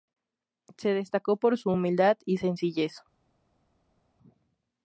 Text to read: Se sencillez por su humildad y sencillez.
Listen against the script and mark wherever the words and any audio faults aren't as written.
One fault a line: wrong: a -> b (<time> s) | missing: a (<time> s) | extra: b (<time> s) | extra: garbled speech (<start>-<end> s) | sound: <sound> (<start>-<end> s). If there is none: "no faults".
wrong: sencillez -> destacó (0.9 s)